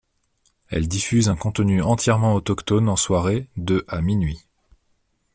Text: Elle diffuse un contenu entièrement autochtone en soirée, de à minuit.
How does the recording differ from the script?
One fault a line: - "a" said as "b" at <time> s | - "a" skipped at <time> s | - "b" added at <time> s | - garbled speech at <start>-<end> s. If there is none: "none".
none